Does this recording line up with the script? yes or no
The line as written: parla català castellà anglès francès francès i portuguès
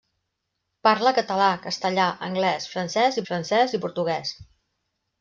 yes